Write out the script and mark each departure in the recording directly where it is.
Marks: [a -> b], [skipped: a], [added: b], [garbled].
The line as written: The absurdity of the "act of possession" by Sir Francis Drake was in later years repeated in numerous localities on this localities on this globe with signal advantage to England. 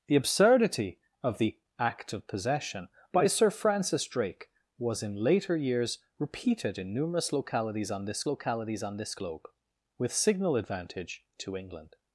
The absurdity of the "act of possession" by Sir Francis Drake was in later years repeated in numerous localities on this localities on this globe with signal advantage to England.